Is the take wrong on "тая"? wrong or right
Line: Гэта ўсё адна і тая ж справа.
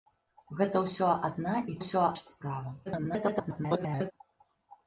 wrong